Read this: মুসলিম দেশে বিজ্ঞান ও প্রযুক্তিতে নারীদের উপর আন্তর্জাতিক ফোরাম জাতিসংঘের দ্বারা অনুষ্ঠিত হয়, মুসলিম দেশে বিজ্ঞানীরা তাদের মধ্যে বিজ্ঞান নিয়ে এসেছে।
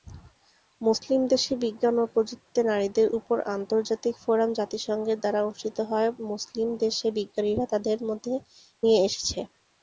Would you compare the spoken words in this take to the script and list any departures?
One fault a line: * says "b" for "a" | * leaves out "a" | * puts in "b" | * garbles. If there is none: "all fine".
* leaves out "বিজ্ঞান"